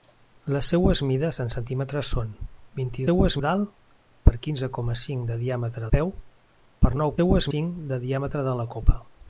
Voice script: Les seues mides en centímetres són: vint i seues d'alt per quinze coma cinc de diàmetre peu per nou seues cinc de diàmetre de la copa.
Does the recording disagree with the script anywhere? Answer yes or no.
no